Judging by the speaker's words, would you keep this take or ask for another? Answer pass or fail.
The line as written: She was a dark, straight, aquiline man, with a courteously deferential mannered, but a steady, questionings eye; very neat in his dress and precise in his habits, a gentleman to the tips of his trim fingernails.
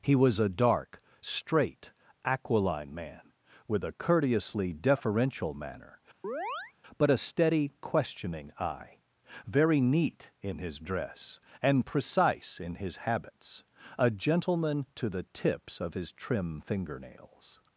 fail